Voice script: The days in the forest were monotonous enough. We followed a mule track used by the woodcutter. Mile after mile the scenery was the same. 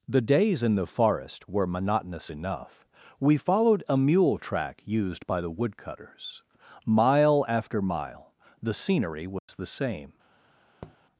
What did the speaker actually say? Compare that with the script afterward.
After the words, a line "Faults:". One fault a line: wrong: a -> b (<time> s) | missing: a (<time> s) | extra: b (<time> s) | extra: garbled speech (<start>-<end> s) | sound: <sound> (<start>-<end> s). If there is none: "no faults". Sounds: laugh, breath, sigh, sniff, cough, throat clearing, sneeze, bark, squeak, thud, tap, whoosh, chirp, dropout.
The days in the forest were monotonous enough. We followed a mule track used by the woodcutters. Mile after mile the scenery was the same.
Faults:
wrong: woodcutter -> woodcutters (5.5 s)
sound: dropout (9.4-9.5 s)
sound: tap (10.8-11.0 s)